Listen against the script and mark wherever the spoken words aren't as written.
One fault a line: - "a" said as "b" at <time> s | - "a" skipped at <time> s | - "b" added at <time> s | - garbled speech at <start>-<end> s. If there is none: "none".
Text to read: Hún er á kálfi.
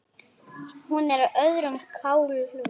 - "öðrum" added at 1.5 s